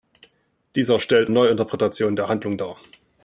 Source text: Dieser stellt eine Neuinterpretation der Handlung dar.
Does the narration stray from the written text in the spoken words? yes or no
yes